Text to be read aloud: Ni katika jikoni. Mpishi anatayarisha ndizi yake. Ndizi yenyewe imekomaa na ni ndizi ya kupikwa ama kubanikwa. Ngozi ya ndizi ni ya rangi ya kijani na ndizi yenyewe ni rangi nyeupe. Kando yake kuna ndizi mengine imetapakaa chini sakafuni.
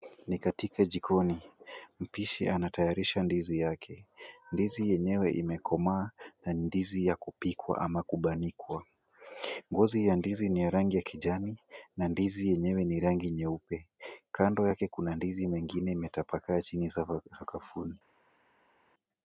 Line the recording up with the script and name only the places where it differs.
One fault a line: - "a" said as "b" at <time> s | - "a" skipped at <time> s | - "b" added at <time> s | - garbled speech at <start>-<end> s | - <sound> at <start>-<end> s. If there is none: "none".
none